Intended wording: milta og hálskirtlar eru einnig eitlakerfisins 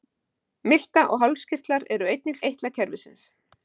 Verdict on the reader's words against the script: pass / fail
pass